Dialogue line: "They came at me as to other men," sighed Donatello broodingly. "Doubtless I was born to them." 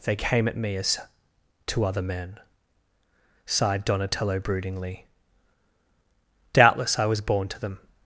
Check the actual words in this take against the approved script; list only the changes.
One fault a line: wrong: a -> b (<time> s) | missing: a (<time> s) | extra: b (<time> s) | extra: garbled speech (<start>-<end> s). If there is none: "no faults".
no faults